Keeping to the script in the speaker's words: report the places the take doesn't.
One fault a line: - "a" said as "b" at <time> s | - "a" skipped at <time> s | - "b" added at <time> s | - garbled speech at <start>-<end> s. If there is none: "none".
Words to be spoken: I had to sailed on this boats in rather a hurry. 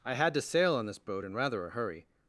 - "sailed" said as "sail" at 0.4 s
- "boats" said as "boat" at 1.0 s